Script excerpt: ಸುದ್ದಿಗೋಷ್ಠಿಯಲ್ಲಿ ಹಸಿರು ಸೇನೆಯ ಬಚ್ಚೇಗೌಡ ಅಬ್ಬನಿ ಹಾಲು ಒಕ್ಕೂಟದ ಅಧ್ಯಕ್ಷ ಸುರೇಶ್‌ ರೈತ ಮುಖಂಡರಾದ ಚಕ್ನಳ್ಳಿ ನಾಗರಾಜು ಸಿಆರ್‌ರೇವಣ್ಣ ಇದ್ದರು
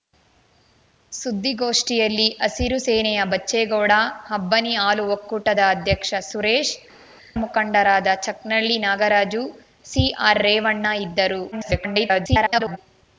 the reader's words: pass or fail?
fail